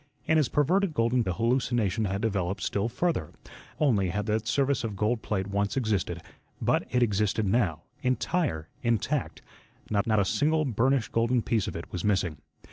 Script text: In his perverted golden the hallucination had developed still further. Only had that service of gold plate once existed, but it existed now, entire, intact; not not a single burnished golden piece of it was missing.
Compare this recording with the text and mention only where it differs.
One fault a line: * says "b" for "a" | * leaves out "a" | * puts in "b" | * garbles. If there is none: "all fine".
all fine